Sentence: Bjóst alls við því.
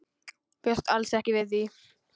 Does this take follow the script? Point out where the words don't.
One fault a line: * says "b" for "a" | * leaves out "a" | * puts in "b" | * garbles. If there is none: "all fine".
* puts in "ekki"